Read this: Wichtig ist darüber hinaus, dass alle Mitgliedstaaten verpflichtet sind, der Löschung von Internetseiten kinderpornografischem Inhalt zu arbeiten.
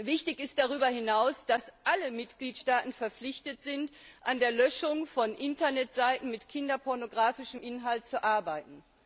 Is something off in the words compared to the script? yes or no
yes